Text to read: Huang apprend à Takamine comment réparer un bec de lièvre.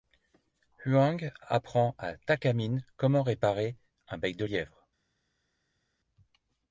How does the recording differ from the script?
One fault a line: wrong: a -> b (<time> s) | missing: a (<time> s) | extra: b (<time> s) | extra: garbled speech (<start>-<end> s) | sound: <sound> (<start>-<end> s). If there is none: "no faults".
no faults